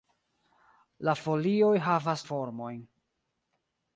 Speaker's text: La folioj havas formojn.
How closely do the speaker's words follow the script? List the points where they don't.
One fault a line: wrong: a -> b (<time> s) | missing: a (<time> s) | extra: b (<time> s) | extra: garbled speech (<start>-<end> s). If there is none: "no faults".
no faults